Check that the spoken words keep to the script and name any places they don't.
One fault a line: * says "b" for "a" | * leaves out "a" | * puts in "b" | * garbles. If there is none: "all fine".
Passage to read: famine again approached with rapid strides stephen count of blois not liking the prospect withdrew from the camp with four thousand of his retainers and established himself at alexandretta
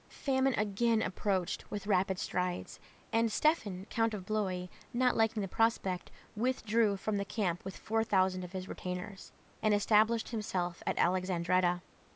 * puts in "and"